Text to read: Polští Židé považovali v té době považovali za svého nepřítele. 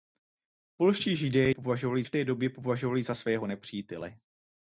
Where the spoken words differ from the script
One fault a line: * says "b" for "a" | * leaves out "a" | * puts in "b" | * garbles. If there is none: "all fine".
all fine